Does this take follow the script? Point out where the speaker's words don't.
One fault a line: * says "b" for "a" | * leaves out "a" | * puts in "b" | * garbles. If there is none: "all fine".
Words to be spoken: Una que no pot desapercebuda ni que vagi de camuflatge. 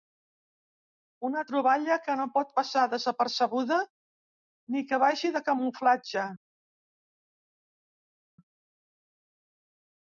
* puts in "troballa"
* puts in "passar"